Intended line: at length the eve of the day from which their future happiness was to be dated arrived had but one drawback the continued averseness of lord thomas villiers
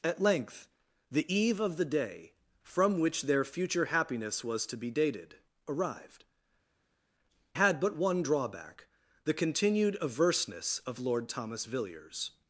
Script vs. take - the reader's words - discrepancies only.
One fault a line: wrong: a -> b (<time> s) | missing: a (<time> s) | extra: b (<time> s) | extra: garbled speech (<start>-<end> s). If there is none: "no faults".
no faults